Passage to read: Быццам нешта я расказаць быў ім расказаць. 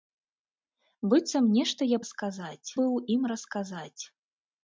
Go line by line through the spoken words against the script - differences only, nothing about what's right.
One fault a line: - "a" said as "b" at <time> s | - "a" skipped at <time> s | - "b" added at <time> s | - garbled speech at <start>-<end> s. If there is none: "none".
none